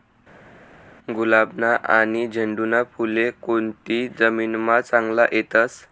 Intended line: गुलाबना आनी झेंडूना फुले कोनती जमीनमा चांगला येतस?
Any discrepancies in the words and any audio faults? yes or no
no